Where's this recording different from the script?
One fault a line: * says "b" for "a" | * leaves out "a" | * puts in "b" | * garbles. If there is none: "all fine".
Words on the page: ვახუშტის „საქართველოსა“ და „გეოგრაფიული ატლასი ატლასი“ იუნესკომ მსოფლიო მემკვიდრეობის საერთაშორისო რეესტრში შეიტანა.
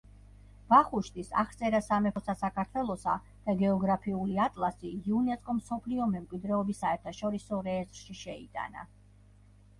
* puts in "აღწერა სამეფოსა"
* leaves out "ატლასი"